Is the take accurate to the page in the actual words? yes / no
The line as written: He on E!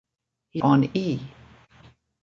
yes